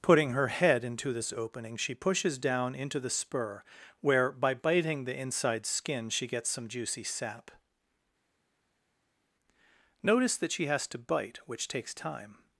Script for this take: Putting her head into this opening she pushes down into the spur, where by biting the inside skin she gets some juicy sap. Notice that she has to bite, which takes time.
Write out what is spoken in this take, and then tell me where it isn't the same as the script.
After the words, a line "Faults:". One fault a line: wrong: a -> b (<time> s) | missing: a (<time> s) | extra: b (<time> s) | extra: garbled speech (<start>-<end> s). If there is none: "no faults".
Putting her head into this opening she pushes down into the spur, where by biting the inside skin she gets some juicy sap. Notice that she has to bite, which takes time.
Faults:
no faults